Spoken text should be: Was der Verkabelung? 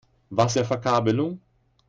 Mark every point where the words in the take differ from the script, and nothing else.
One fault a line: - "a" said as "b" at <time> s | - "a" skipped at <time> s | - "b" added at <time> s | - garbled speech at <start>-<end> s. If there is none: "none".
none